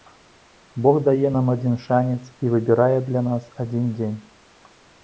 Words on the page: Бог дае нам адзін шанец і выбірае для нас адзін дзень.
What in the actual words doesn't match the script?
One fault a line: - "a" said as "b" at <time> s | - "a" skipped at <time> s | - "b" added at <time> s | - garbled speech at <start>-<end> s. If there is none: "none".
none